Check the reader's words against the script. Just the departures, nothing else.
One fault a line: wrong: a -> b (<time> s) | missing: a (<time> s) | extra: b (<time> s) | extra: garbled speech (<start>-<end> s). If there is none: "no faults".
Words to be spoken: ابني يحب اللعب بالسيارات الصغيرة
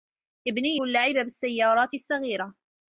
missing: يحب (0.8 s)